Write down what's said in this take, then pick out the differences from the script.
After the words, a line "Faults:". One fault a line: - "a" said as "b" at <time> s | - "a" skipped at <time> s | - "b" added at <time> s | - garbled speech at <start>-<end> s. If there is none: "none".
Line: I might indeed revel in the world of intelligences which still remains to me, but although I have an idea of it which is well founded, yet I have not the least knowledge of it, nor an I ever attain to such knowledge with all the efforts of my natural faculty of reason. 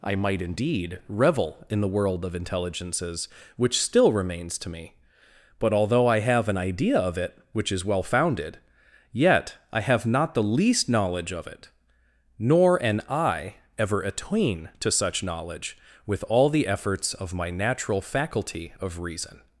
I might indeed revel in the world of intelligences which still remains to me, but although I have an idea of it which is well founded, yet I have not the least knowledge of it, nor an I ever attain to such knowledge with all the efforts of my natural faculty of reason.
Faults:
none